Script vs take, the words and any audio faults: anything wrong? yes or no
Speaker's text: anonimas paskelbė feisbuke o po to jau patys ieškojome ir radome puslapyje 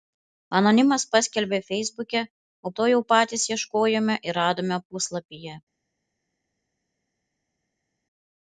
yes